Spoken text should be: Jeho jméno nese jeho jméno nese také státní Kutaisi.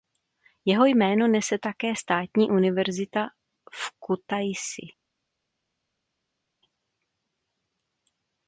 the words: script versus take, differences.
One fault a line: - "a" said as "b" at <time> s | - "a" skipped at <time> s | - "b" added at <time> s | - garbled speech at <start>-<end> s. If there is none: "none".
- "jeho jméno nese také státní" said as "také státní univerzita v" at 1.6 s